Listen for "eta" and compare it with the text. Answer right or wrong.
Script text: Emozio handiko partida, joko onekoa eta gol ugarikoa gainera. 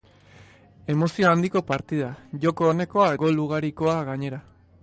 wrong